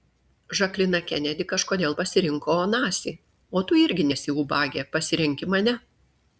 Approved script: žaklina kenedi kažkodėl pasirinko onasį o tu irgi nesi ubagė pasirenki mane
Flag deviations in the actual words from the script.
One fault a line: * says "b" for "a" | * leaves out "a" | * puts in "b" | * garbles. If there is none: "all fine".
all fine